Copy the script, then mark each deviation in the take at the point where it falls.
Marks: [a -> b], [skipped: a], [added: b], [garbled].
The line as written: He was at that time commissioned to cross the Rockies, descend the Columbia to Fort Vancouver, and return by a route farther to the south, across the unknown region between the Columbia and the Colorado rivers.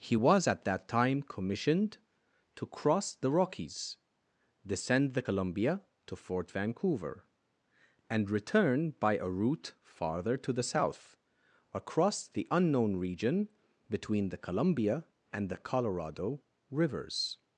He was at that time commissioned to cross the Rockies, descend the Columbia to Fort Vancouver, and return by a route farther to the south, across the unknown region between the Columbia and the Colorado rivers.